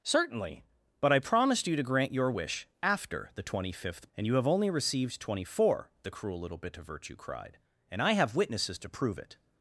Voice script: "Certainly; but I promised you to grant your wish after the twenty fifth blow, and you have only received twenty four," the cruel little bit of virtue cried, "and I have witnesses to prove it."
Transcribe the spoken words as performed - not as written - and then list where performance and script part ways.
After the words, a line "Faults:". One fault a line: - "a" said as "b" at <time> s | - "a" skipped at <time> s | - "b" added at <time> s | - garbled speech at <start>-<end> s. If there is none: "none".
"Certainly; but I promised you to grant your wish after the twenty fifth and you have only received twenty four," the cruel little bit of virtue cried, "and I have witnesses to prove it."
Faults:
- "blow" skipped at 4.1 s